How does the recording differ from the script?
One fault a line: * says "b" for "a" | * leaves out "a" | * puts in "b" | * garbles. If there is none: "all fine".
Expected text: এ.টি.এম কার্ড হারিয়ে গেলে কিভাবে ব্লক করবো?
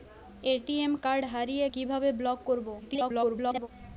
* leaves out "গেলে"
* garbles